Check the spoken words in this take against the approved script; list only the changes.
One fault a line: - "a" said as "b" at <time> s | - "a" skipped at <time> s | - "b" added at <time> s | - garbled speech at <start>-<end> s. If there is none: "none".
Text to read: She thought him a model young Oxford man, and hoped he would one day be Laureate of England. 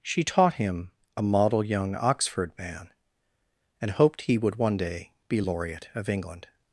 - "thought" said as "taught" at 0.2 s